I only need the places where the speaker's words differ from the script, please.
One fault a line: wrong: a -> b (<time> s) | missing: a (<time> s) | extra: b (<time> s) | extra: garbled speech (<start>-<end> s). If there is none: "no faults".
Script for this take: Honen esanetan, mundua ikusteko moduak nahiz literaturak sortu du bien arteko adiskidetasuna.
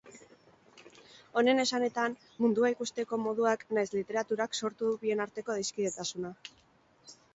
no faults